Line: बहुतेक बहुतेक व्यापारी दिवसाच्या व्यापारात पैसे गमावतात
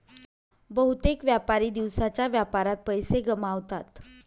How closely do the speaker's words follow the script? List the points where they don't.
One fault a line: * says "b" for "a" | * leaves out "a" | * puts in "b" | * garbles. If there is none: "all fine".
* leaves out "बहुतेक"